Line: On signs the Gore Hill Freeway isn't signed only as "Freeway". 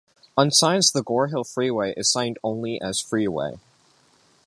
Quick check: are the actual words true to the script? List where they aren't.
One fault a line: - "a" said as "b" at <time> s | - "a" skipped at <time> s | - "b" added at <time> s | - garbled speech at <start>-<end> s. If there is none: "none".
- "isn't" said as "is" at 1.9 s